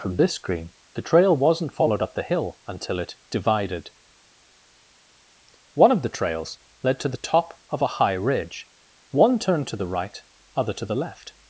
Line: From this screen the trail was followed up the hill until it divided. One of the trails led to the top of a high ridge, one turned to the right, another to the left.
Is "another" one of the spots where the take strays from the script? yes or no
yes